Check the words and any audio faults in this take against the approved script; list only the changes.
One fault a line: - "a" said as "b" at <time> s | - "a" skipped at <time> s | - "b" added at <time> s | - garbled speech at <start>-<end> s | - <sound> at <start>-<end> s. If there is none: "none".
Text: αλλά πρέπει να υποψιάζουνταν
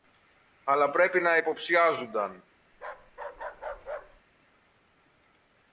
- bark at 2.7-4.2 s